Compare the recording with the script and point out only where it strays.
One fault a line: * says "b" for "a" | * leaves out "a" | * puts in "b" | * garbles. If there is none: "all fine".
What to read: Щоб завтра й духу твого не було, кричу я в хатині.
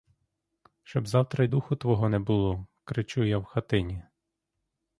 all fine